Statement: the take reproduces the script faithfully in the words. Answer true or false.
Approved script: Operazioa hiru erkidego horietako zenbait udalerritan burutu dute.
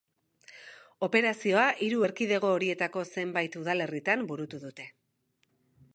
true